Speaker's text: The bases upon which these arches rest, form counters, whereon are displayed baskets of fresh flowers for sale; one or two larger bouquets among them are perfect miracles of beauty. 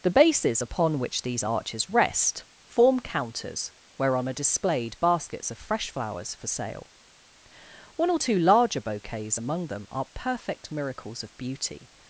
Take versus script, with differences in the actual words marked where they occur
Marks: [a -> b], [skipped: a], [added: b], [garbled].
The bases upon which these arches rest, form counters, whereon are displayed baskets of fresh flowers for sale; one or two larger bouquets among them are perfect miracles of beauty.